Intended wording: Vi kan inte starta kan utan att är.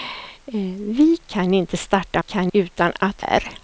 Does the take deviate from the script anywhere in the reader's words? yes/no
no